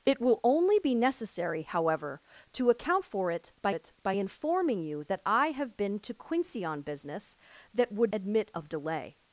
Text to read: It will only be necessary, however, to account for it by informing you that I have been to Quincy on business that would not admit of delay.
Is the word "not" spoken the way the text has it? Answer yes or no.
no